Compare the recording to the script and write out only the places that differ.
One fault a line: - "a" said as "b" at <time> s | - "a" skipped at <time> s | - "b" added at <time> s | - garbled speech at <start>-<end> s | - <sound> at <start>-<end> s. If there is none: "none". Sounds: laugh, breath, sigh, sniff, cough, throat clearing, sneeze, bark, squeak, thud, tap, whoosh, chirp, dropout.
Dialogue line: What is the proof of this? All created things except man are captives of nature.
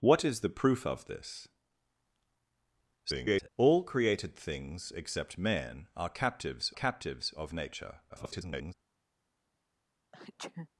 - garbled speech at 3.0-3.5 s
- "captives" added at 6.7 s
- garbled speech at 8.1-8.7 s
- sneeze at 10.1-10.7 s